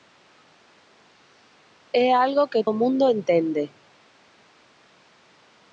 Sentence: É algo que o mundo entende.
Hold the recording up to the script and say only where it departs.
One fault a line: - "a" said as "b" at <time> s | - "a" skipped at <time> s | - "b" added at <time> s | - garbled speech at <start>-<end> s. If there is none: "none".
none